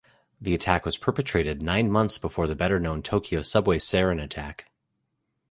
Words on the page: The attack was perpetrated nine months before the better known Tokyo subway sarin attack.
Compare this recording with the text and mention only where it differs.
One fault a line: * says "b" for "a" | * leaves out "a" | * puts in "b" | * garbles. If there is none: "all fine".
all fine